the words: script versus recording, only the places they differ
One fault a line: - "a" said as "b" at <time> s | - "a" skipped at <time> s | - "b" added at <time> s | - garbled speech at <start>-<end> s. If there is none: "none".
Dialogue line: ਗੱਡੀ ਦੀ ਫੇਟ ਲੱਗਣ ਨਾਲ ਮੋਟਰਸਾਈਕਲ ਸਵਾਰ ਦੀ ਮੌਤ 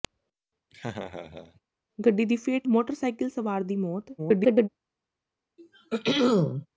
- "ਲੱਗਣ ਨਾਲ" skipped at 2.7 s
- garbled speech at 4.2-4.7 s